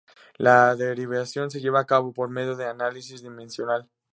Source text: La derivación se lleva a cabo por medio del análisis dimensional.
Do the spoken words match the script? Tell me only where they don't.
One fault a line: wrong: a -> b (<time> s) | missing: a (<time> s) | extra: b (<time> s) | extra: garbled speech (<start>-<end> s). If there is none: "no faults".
no faults